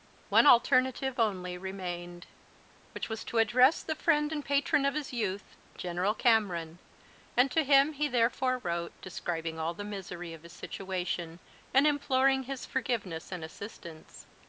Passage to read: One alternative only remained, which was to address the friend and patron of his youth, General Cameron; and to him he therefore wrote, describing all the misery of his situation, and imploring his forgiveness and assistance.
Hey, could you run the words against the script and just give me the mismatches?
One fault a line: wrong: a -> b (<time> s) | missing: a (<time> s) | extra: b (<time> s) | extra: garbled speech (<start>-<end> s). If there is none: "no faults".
no faults